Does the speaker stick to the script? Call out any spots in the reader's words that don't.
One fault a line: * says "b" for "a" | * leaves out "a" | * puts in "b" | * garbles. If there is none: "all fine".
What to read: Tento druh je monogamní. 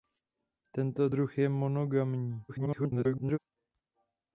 * garbles